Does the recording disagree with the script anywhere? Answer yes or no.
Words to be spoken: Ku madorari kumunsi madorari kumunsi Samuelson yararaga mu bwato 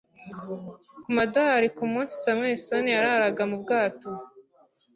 yes